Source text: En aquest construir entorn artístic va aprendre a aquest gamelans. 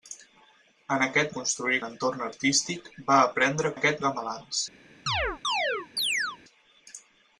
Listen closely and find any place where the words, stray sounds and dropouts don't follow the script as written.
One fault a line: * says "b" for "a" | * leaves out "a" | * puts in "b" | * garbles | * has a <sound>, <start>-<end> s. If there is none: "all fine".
* has a chirp, 5.1-6.4 s